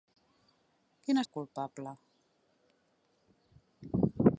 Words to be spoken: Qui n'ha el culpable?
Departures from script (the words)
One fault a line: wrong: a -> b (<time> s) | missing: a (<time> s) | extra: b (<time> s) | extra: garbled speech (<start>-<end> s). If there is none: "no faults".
no faults